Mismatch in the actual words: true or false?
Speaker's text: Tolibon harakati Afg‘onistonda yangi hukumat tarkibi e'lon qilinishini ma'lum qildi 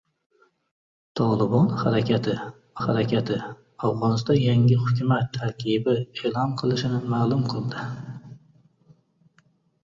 true